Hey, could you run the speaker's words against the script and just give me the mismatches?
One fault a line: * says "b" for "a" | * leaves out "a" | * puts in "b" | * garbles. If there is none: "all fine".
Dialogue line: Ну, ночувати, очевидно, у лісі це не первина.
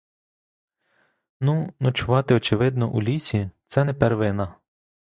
all fine